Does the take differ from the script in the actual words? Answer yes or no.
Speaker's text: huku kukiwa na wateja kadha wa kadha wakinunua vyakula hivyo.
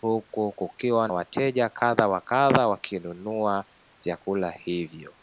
yes